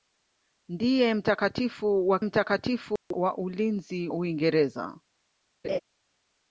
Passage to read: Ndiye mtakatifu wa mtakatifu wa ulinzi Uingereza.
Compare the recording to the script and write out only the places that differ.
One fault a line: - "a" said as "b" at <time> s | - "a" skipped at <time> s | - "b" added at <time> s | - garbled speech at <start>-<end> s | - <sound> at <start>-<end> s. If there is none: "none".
- dropout at 3.0-3.1 s
- laugh at 5.6-5.8 s